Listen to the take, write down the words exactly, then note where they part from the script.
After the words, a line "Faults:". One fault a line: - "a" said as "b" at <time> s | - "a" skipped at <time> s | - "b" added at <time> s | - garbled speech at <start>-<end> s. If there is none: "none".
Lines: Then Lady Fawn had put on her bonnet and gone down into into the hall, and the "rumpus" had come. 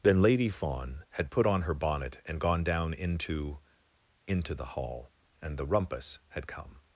Then Lady Fawn had put on her bonnet and gone down into into the hall, and the "rumpus" had come.
Faults:
none